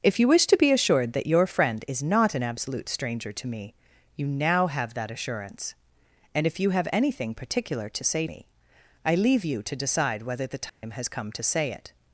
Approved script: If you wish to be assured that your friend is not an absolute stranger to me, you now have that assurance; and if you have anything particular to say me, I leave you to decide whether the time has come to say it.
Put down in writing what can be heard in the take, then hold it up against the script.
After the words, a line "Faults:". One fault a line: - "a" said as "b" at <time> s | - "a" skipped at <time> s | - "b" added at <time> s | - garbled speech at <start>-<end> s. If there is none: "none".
If you wish to be assured that your friend is not an absolute stranger to me, you now have that assurance; and if you have anything particular to say me, I leave you to decide whether the time has come to say it.
Faults:
none